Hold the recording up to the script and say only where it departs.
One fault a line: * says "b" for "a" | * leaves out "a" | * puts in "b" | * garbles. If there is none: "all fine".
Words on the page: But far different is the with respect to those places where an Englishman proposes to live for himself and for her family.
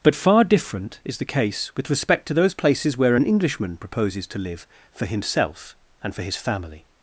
* puts in "case"
* says "his" for "her"